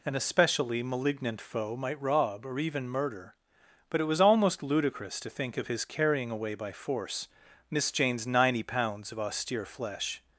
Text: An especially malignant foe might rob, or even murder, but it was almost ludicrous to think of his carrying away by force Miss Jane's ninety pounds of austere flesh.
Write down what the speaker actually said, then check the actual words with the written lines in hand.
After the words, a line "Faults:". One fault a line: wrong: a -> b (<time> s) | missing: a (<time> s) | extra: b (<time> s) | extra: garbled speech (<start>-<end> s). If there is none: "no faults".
An especially malignant foe might rob, or even murder, but it was almost ludicrous to think of his carrying away by force Miss Jane's ninety pounds of austere flesh.
Faults:
no faults